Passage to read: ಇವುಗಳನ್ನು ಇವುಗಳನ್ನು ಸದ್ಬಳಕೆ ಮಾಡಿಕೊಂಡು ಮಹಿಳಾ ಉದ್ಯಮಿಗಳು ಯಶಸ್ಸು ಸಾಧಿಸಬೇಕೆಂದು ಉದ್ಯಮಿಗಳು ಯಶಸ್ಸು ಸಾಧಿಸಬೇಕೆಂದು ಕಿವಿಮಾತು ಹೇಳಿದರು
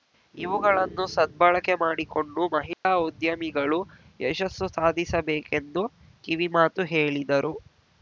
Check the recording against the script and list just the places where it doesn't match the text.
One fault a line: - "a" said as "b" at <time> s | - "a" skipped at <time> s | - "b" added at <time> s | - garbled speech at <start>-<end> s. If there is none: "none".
- "ಇವುಗಳನ್ನು" skipped at 1.1 s
- "ಉದ್ಯಮಿಗಳು ಯಶಸ್ಸು ಸಾಧಿಸಬೇಕೆಂದು" skipped at 5.8 s